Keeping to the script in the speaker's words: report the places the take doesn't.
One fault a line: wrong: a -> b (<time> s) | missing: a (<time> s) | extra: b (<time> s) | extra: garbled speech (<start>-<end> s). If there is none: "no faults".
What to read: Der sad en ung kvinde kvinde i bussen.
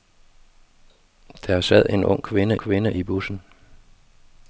no faults